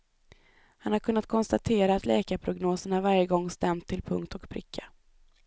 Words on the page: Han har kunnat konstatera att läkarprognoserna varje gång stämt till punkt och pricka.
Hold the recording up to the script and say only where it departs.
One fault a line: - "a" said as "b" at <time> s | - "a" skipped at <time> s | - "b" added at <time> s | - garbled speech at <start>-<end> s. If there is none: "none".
none